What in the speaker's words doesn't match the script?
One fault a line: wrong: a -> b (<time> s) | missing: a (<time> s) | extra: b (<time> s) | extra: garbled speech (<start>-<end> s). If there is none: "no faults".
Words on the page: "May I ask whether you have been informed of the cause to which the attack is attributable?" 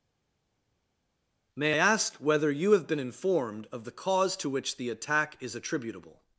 missing: I (1.7 s)